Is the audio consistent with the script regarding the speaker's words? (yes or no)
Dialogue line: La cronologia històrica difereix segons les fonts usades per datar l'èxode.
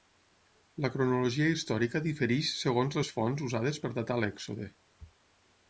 yes